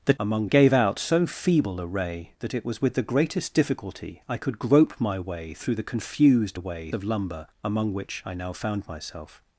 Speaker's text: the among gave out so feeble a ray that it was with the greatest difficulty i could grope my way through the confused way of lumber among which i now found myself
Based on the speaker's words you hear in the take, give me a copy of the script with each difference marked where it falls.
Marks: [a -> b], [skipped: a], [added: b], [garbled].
the among gave out so feeble a ray that it was with the greatest difficulty i could grope my way through the confused way of lumber among which i now found myself